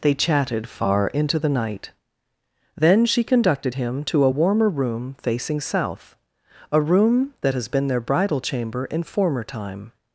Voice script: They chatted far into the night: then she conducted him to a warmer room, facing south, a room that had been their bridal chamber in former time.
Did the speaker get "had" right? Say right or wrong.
wrong